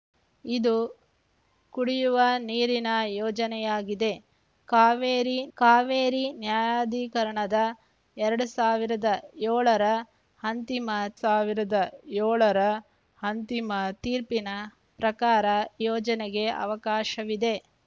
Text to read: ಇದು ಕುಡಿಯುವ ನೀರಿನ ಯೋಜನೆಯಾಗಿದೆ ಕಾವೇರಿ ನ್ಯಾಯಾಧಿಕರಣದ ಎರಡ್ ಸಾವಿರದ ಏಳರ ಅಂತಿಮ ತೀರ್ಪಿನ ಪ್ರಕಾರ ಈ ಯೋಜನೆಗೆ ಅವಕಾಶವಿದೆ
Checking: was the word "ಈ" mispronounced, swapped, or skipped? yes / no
yes